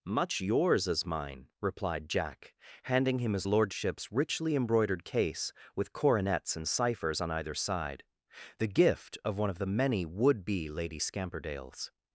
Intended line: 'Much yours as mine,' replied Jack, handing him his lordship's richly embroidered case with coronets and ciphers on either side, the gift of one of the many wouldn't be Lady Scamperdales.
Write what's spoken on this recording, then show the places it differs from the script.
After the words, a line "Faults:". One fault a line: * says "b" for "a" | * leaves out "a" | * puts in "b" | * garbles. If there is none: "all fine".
'Much yours as mine,' replied Jack, handing him his lordship's richly embroidered case with coronets and ciphers on either side, the gift of one of the many would be Lady Scamperdales.
Faults:
* says "would" for "wouldn't"